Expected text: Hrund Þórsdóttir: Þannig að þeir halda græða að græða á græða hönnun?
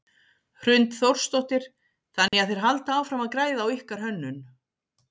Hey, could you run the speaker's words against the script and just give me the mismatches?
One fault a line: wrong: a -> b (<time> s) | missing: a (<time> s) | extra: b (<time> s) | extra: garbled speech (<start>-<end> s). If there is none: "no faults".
wrong: græða -> áfram (3.0 s)
wrong: græða -> ykkar (3.8 s)